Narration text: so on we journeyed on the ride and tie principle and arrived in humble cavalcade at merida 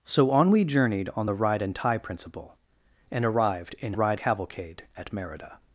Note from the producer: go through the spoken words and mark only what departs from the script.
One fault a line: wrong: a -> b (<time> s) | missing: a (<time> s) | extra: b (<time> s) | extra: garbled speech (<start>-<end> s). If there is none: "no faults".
wrong: humble -> ride (3.9 s)